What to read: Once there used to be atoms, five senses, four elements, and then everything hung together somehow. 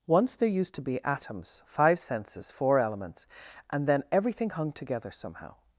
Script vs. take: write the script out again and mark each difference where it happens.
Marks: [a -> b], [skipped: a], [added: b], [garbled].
Once there used to be atoms, five senses, four elements, and then everything hung together somehow.